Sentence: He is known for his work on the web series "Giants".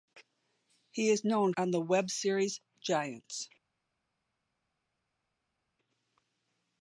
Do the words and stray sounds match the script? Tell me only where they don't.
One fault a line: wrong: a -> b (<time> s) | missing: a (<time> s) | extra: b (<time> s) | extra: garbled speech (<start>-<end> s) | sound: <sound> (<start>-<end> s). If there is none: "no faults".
missing: for his work (1.5 s)